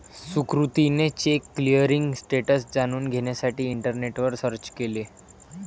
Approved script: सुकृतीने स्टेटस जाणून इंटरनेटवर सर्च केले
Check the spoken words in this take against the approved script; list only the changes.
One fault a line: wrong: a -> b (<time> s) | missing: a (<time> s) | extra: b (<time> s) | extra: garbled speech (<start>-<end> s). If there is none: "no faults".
extra: चेक क्लिअरिंग (1.1 s)
extra: घेण्यासाठी (3.1 s)